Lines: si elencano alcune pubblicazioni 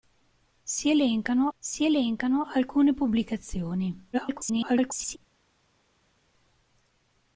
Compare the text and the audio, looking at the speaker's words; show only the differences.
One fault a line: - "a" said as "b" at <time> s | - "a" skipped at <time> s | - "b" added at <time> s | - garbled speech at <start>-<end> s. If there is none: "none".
- "si elencano" added at 1.6 s
- garbled speech at 4.1-5.2 s